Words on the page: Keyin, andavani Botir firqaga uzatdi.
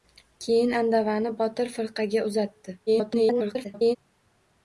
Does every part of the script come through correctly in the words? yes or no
no